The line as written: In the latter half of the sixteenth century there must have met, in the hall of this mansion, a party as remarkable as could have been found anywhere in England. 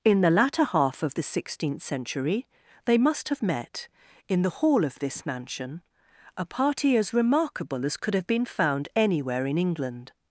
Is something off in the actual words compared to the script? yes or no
yes